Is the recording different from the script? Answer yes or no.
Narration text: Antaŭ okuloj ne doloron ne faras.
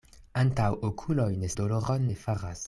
no